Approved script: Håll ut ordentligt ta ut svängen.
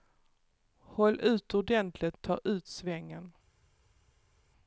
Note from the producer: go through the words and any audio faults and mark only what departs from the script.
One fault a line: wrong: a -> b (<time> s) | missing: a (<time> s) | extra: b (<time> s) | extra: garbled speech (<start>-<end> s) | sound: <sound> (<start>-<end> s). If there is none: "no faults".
no faults